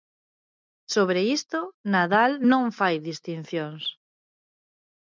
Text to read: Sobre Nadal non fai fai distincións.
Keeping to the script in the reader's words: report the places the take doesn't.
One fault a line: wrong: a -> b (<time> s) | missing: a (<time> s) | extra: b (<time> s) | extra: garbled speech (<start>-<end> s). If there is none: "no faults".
extra: isto (1.4 s)
missing: fai (3.0 s)